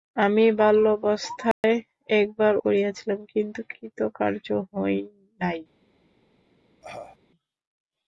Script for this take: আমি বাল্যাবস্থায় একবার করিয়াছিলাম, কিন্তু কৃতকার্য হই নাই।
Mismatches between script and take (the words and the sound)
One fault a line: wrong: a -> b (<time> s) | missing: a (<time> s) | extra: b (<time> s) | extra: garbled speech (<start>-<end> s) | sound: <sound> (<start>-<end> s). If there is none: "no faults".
sound: dropout (1.5-1.6 s)
sound: cough (6.8-7.2 s)